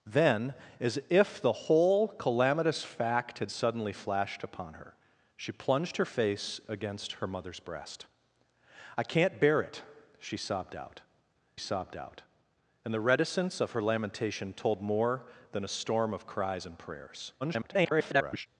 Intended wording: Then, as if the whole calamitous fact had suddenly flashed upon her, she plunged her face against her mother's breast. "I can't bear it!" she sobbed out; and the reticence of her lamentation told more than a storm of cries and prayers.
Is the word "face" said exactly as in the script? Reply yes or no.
yes